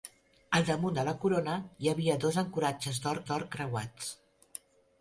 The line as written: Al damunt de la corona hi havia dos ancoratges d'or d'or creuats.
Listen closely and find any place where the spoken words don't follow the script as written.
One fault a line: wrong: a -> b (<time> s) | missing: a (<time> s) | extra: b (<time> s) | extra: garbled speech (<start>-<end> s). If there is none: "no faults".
no faults